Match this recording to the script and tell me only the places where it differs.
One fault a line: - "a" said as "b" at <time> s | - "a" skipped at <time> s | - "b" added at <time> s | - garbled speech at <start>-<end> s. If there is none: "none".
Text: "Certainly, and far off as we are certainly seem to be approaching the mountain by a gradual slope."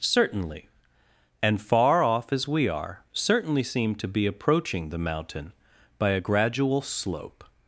none